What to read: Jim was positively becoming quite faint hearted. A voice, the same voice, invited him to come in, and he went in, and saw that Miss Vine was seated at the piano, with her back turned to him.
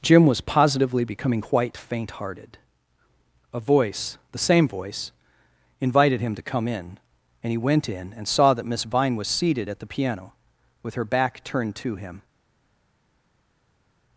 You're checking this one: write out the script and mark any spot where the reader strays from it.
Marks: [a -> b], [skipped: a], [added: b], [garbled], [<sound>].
Jim was positively becoming quite faint hearted. A voice, the same voice, invited him to come in, and he went in, and saw that Miss Vine was seated at the piano, with her back turned to him.